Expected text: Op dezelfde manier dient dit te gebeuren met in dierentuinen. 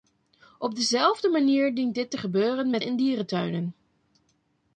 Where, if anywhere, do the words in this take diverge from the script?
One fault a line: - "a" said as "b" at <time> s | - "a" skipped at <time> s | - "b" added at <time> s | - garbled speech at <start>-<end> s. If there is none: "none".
none